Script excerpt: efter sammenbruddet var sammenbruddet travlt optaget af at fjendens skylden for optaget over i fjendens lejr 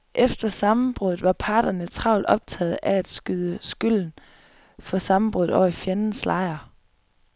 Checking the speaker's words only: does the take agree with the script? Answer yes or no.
no